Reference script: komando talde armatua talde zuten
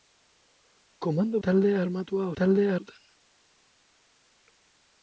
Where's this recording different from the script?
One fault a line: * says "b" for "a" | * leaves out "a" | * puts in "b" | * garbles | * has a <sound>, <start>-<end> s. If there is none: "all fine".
all fine